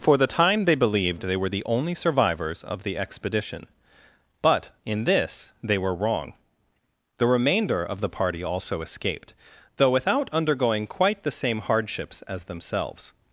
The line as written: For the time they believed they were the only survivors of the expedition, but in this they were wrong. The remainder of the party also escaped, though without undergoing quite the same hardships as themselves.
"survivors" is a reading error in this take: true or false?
false